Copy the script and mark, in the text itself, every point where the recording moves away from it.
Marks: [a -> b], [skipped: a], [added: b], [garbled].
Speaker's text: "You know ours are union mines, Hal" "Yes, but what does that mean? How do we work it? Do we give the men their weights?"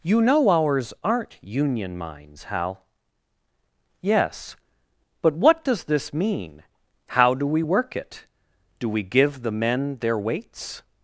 "You know ours [are -> aren't] union mines, Hal" "Yes, but what does [that -> this] mean? How do we work it? Do we give the men their weights?"